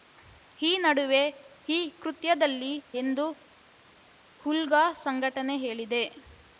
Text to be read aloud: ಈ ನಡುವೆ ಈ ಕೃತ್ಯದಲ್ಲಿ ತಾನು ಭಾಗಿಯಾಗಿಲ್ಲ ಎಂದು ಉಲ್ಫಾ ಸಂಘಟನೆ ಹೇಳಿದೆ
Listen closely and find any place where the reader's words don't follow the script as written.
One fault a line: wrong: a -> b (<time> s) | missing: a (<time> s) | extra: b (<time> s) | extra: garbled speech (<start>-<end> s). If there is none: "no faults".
missing: ತಾನು ಭಾಗಿಯಾಗಿಲ್ಲ (2.7 s)